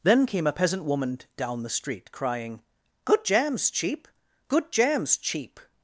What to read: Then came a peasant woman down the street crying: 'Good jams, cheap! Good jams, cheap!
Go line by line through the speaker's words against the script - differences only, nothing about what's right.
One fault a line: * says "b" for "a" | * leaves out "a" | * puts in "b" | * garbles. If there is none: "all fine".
all fine